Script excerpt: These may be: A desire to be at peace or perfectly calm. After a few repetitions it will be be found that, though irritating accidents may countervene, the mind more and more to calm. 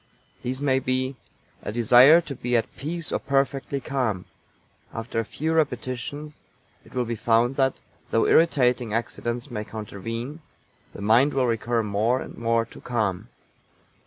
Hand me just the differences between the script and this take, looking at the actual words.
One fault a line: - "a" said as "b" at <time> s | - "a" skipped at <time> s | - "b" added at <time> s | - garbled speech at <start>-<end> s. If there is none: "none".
- "be" skipped at 7.2 s
- "will recur" added at 11.3 s